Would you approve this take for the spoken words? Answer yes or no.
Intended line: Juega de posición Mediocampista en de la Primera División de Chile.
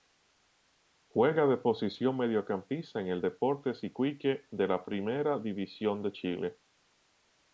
no